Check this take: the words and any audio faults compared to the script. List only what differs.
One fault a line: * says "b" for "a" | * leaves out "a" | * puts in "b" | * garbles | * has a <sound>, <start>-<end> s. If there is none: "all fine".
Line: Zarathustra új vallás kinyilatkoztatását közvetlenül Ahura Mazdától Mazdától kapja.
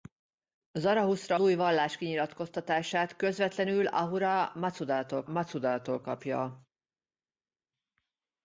all fine